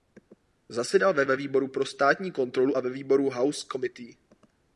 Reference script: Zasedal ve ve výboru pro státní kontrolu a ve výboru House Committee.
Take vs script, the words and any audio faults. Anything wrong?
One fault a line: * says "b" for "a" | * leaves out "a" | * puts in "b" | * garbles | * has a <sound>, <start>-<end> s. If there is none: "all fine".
all fine